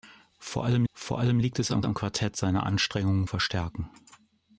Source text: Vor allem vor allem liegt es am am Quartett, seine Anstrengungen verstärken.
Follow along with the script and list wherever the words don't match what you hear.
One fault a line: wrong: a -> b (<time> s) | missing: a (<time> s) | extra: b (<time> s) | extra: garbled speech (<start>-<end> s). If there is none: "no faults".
no faults